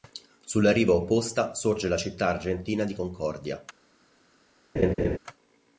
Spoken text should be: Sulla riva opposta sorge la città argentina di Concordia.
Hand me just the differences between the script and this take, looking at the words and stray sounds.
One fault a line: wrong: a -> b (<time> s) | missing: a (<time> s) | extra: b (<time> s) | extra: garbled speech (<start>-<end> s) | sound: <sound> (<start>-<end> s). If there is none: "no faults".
sound: laugh (4.8-5.2 s)